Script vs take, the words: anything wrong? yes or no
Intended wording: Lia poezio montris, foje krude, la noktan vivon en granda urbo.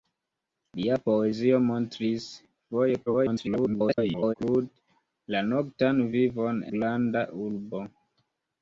yes